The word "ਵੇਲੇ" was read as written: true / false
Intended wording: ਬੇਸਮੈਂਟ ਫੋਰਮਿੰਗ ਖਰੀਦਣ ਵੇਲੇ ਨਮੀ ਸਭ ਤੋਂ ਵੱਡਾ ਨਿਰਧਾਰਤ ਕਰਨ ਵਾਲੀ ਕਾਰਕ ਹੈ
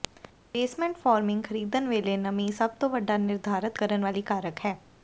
true